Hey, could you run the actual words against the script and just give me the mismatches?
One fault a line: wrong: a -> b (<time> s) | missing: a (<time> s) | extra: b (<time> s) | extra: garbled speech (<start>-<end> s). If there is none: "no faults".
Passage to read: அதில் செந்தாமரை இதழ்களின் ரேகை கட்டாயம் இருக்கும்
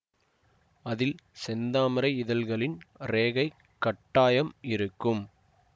no faults